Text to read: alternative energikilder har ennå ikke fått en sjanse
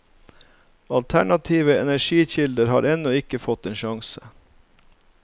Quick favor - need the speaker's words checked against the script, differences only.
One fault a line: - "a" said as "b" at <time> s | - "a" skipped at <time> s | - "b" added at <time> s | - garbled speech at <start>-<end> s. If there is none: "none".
none